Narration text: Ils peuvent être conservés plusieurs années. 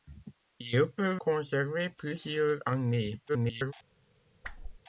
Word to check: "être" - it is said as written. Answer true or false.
false